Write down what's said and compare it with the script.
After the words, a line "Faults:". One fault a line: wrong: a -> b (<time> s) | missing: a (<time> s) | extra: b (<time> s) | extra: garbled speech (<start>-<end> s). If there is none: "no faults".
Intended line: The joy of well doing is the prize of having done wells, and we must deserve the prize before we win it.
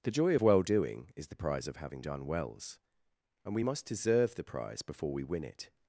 The joy of well doing is the prize of having done wells, and we must deserve the prize before we win it.
Faults:
no faults